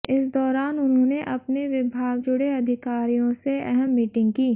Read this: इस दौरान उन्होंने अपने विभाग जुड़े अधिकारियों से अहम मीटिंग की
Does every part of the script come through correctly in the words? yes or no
yes